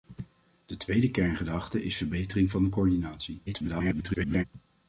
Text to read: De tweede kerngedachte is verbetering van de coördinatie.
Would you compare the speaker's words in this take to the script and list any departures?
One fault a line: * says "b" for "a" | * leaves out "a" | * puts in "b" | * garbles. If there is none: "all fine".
* garbles